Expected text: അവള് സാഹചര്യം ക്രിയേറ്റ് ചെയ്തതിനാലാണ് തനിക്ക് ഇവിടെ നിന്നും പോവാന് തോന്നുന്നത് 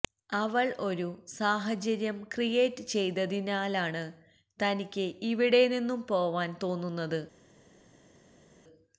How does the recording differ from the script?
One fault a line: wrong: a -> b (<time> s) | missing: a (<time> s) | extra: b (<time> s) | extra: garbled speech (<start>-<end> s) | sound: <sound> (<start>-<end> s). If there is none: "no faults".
extra: ഒരു (0.8 s)